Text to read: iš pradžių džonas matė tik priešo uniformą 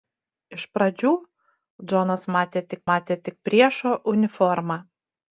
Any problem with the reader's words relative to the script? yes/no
yes